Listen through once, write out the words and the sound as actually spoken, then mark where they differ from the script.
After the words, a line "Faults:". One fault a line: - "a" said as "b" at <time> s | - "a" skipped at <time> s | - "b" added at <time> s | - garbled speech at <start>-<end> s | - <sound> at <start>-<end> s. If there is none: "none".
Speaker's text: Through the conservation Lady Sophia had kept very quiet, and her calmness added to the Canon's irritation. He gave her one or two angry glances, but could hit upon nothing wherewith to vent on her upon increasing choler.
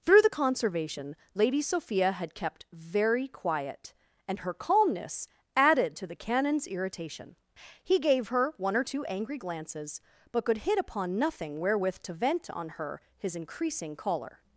Through the conservation Lady Sophia had kept very quiet, and her calmness added to the Canon's irritation. He gave her one or two angry glances, but could hit upon nothing wherewith to vent on her his increasing choler.
Faults:
- "upon" said as "his" at 13.2 s